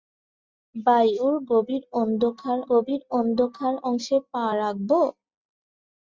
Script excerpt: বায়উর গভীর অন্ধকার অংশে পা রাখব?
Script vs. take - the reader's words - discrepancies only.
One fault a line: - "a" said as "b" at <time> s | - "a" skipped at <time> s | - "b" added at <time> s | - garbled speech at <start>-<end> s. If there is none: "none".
- "গভীর অন্ধকার" added at 2.7 s